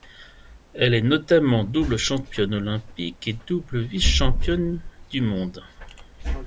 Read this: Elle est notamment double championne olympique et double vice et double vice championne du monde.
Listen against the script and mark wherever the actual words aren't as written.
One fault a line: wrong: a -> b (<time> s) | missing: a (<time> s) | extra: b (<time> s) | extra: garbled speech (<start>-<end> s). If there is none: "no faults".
missing: et double vice (4.0 s)